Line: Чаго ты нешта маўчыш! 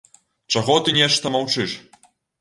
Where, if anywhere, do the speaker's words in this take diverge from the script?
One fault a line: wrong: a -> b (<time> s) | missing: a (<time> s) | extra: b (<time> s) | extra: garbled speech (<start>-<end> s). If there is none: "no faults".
no faults